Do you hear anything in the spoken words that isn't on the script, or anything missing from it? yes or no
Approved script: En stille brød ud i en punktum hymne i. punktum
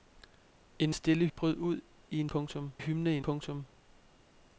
no